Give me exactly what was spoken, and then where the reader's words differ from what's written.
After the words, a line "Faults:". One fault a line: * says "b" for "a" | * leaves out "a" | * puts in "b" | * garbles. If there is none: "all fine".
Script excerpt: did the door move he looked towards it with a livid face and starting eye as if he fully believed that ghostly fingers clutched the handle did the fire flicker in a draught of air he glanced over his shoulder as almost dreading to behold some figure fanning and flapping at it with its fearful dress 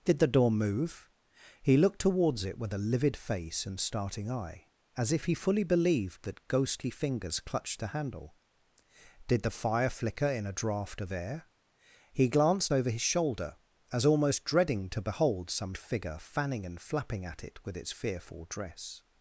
did the door move he looked towards it with a livid face and starting eye as if he fully believed that ghostly fingers clutched the handle did the fire flicker in a draught of air he glanced over his shoulder as almost dreading to behold some figure fanning and flapping at it with its fearful dress
Faults:
all fine